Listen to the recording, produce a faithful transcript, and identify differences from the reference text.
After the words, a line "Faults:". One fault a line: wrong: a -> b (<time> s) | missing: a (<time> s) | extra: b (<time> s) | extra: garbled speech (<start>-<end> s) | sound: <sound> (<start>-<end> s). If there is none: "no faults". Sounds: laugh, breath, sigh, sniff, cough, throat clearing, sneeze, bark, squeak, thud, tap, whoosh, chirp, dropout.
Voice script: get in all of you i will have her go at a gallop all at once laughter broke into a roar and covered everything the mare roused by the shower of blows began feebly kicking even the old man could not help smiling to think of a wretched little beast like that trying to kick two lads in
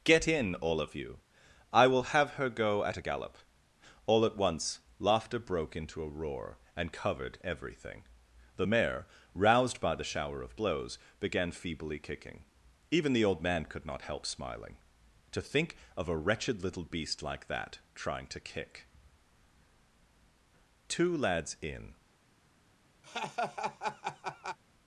get in all of you i will have her go at a gallop all at once laughter broke into a roar and covered everything the mare roused by the shower of blows began feebly kicking even the old man could not help smiling to think of a wretched little beast like that trying to kick two lads in
Faults:
sound: laugh (23.0-24.6 s)